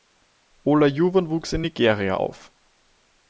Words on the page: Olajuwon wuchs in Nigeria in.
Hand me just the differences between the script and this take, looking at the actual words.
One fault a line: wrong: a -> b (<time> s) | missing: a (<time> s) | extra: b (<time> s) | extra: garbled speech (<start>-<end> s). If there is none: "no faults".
wrong: in -> auf (2.1 s)